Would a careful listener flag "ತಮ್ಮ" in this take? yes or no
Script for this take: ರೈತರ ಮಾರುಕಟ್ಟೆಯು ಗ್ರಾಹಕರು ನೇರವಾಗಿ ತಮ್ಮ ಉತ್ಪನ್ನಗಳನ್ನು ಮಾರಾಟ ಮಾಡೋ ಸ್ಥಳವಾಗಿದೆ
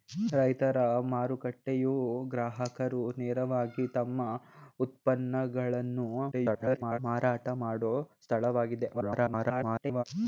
no